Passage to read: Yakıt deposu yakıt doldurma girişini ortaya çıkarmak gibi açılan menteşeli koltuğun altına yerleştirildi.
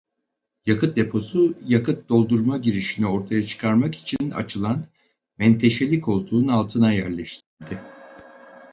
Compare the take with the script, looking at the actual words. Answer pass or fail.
fail